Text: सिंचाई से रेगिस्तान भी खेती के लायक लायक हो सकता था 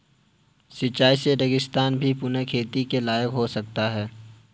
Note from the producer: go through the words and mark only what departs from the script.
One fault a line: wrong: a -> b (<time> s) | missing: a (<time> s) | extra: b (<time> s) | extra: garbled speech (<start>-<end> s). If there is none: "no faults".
extra: पुनः (2.1 s)
missing: लायक (3.3 s)
wrong: था -> है (3.9 s)